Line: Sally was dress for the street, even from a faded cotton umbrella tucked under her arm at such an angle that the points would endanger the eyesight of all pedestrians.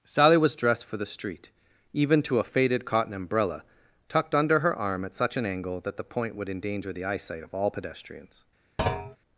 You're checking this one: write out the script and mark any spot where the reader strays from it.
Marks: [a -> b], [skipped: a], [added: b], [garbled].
Sally was [dress -> dressed] for the street, even [from -> to] a faded cotton umbrella tucked under her arm at such an angle that the [points -> point] would endanger the eyesight of all pedestrians.